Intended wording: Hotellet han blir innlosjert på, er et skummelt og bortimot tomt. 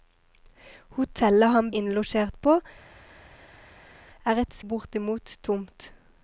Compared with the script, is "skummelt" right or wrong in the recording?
wrong